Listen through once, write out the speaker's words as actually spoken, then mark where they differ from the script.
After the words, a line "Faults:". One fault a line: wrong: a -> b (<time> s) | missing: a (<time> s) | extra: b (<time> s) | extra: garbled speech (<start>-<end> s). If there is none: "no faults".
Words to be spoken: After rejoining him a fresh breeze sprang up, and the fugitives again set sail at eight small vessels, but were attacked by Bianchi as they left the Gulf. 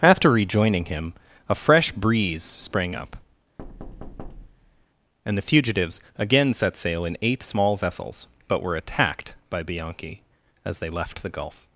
After rejoining him a fresh breeze sprang up, and the fugitives again set sail in eight small vessels, but were attacked by Bianchi as they left the Gulf.
Faults:
wrong: at -> in (7.0 s)